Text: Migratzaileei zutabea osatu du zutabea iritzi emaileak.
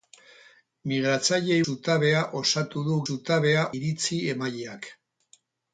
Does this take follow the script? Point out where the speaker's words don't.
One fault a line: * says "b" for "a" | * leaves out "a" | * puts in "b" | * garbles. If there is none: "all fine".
all fine